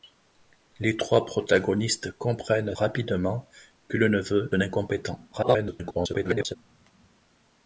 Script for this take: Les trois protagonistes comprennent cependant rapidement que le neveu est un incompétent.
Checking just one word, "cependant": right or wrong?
wrong